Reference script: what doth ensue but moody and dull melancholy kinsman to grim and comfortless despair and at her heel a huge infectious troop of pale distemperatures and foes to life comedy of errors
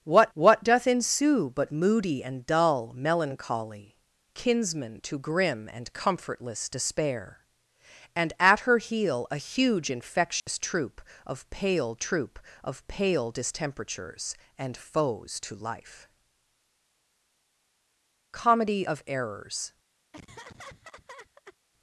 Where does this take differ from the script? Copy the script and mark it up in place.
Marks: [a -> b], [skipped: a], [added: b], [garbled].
what [added: what] doth ensue but moody and dull melancholy kinsman to grim and comfortless despair and at her heel a huge infectious troop of pale [added: troop of pale] distemperatures and foes to life comedy of errors